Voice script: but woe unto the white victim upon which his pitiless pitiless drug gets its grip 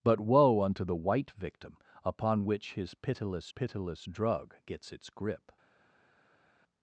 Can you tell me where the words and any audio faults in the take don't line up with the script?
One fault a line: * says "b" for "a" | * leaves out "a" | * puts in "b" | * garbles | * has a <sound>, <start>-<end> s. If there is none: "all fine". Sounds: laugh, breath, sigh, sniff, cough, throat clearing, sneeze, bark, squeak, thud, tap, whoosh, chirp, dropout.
all fine